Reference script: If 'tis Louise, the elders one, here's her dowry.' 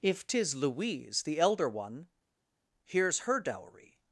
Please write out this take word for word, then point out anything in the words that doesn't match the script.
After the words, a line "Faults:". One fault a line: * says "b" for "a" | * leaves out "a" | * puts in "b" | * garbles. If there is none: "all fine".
If 'tis Louise, the elder one, here's her dowry.'
Faults:
* says "elder" for "elders"